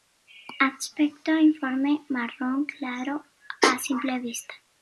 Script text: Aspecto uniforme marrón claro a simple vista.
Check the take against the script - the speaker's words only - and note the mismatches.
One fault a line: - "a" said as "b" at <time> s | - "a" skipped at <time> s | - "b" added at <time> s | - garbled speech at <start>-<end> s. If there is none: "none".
none